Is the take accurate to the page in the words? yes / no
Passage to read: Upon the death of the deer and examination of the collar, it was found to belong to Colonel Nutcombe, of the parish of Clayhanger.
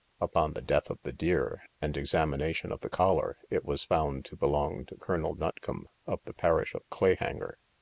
yes